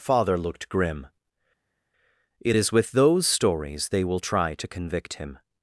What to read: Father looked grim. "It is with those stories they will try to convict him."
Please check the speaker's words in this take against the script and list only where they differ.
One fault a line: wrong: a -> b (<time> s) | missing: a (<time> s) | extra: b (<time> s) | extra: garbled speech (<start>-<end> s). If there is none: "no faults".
no faults